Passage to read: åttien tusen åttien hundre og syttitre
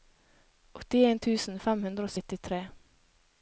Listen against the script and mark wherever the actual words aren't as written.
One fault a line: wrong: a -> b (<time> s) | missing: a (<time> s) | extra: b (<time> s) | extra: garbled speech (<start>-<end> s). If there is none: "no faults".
wrong: åttien -> fem (1.6 s)